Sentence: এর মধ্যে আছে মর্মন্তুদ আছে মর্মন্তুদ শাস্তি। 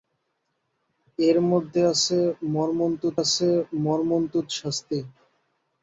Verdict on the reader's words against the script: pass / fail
pass